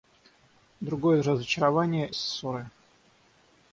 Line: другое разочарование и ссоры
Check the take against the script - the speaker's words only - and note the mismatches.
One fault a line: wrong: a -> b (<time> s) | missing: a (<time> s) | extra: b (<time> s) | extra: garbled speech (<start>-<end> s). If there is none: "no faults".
no faults